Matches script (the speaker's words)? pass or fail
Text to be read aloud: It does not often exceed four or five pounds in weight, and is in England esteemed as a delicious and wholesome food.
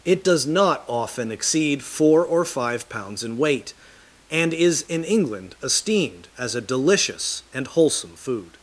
pass